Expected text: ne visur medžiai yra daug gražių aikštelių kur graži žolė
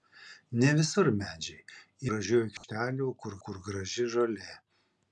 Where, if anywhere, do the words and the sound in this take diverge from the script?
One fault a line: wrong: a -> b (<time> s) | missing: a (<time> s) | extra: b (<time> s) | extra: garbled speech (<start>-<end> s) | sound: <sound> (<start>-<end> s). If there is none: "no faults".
missing: yra daug (2.1 s)
sound: dropout (2.6-2.6 s)
extra: kur (3.5 s)